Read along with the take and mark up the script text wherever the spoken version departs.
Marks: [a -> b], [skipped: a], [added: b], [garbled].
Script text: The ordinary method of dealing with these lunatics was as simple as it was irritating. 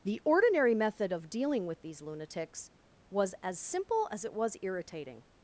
The ordinary method of dealing with these lunatics was as simple as it was irritating.